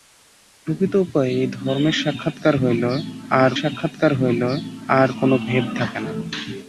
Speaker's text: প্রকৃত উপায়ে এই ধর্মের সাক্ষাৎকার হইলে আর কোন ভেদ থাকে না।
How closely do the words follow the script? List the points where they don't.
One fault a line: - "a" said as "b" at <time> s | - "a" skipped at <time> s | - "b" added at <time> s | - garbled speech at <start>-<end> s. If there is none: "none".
- "সাক্ষাৎকার হইলে আর" added at 3.6 s